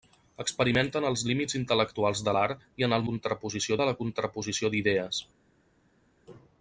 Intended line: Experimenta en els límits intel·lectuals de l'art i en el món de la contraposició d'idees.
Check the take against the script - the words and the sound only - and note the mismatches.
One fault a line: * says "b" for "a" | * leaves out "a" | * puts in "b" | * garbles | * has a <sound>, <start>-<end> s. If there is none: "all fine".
* says "contraposició" for "món"